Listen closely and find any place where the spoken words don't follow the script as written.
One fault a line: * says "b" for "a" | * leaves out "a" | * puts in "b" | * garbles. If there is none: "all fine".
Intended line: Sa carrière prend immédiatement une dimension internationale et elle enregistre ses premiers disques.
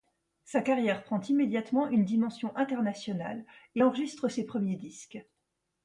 * leaves out "elle"